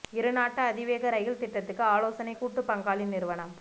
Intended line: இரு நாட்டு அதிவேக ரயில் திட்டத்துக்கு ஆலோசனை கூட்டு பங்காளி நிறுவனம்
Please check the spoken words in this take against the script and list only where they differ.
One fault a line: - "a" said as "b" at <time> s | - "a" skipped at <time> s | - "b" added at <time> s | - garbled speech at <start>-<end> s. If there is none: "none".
none